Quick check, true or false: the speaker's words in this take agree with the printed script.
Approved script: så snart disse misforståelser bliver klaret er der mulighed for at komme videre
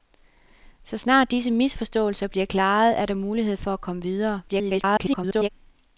false